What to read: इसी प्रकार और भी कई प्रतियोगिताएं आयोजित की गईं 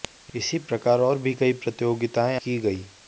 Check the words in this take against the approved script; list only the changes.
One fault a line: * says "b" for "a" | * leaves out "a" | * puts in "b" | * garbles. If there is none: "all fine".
* leaves out "आयोजित"